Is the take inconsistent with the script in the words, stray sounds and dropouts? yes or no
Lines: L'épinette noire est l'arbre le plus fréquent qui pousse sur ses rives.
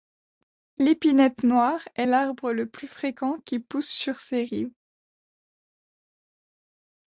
no